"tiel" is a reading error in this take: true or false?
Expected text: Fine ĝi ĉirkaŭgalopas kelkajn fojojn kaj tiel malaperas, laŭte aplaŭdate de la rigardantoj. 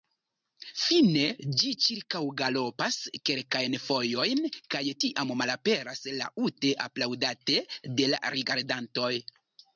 true